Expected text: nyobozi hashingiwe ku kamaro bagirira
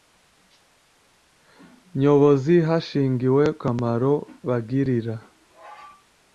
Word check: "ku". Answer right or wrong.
wrong